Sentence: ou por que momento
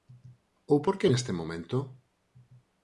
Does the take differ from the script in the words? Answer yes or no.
yes